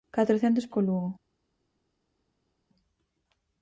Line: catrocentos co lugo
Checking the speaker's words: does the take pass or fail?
pass